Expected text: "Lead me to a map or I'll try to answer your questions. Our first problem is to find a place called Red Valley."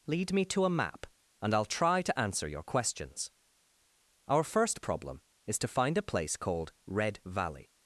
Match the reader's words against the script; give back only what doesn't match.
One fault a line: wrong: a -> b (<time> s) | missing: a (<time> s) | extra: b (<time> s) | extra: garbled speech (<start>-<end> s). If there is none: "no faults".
wrong: or -> and (1.4 s)